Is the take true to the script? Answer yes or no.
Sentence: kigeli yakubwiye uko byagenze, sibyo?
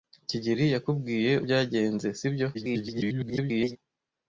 no